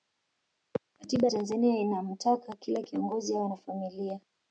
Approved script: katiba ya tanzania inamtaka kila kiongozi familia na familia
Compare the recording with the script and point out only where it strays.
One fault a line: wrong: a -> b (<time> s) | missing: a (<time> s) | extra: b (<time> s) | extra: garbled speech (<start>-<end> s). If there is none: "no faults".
wrong: familia -> awe (3.4 s)